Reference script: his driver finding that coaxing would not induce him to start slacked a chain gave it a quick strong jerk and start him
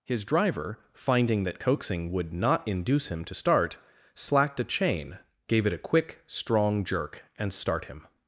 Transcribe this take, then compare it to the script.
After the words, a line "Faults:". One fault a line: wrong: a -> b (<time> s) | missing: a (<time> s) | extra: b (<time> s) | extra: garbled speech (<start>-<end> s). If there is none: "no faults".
his driver finding that coaxing would not induce him to start slacked a chain gave it a quick strong jerk and start him
Faults:
no faults